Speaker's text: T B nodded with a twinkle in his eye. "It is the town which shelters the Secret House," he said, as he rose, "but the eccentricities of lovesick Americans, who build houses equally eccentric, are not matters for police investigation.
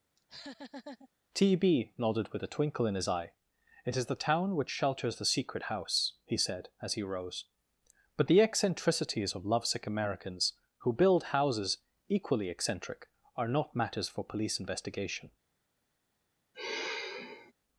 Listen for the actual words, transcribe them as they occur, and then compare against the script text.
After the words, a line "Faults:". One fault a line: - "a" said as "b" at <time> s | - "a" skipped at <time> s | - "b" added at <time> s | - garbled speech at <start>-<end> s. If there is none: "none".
T B nodded with a twinkle in his eye. "It is the town which shelters the Secret House," he said, as he rose, "but the eccentricities of lovesick Americans, who build houses equally eccentric, are not matters for police investigation.
Faults:
none